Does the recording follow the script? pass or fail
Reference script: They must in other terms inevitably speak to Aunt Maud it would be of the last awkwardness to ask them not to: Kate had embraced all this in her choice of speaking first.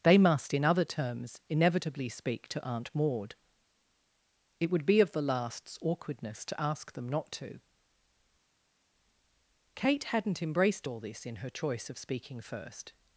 fail